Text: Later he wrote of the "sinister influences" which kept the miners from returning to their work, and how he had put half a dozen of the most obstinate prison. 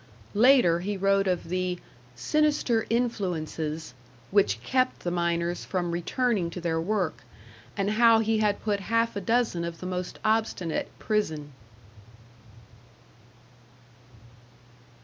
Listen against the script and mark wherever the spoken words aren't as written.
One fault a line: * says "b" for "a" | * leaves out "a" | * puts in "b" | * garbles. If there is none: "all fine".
all fine